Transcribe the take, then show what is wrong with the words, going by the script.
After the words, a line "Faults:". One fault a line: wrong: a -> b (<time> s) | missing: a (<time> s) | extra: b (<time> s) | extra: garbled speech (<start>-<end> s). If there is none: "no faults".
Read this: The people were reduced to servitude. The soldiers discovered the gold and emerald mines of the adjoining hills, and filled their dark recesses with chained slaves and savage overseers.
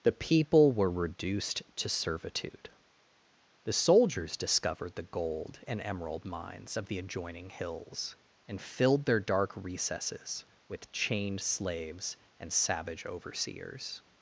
The people were reduced to servitude. The soldiers discovered the gold and emerald mines of the adjoining hills, and filled their dark recesses with chained slaves and savage overseers.
Faults:
no faults